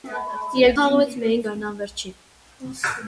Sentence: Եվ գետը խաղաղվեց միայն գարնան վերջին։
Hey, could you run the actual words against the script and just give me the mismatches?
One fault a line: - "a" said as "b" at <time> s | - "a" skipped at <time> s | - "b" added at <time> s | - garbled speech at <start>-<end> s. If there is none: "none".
- "գետը" skipped at 0.7 s